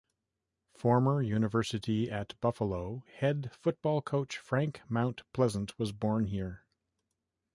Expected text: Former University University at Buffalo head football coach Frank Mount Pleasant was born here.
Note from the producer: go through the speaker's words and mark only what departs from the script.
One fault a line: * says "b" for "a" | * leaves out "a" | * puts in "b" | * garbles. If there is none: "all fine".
* leaves out "University"